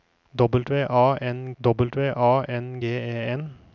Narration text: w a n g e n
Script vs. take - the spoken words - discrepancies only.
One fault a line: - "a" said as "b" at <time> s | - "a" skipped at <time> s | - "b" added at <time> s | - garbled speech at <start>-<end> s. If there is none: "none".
- "w a n" added at 1.6 s